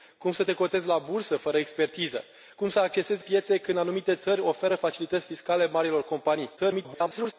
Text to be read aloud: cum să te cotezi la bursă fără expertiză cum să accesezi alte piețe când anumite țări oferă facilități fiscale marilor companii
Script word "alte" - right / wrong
wrong